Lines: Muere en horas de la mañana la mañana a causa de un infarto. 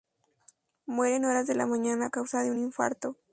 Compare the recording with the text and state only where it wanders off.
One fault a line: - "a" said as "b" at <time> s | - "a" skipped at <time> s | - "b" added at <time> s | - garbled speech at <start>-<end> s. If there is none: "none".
- "la mañana" skipped at 2.1 s